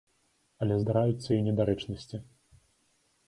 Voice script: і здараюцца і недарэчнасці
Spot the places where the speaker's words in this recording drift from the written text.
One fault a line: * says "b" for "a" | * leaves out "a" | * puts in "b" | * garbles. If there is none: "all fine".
* says "але" for "і"